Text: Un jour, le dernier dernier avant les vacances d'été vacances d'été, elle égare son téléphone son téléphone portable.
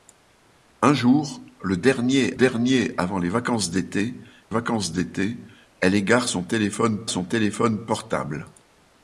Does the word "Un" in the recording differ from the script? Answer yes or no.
no